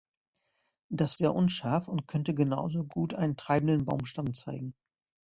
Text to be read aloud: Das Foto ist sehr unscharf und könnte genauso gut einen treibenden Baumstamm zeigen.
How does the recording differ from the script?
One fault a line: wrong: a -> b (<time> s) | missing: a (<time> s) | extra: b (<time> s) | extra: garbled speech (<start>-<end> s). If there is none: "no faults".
missing: Foto ist (1.1 s)